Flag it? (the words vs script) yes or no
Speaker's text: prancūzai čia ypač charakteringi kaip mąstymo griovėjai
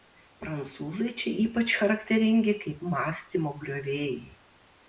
no